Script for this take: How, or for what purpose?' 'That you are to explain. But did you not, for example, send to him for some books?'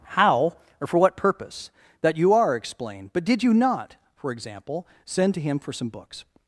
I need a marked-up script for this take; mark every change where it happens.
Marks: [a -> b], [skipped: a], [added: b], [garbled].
How, or for what purpose?' 'That you are [skipped: to] explain. But did you not, for example, send to him for some books?'